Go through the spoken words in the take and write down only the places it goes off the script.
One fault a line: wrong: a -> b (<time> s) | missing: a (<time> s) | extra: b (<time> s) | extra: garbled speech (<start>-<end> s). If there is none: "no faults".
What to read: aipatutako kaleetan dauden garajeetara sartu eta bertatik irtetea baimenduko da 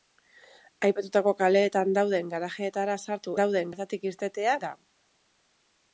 wrong: eta -> dauden (3.4 s)
missing: baimenduko (4.6 s)